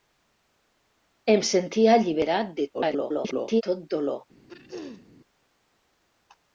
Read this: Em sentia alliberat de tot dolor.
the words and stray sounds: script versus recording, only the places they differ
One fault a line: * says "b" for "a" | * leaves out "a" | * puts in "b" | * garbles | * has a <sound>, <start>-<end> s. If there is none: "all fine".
* garbles
* has a throat clearing, 4.5-5.1 s